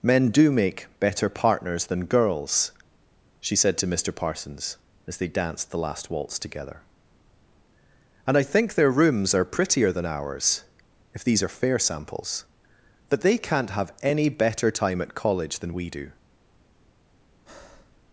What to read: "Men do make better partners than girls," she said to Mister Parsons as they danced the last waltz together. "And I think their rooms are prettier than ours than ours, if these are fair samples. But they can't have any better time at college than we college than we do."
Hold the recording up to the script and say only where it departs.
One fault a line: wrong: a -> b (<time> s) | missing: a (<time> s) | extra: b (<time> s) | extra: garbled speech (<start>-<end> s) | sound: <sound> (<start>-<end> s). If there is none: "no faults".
missing: than ours (10.6 s)
missing: college than we (15.9 s)
sound: breath (17.5-18.0 s)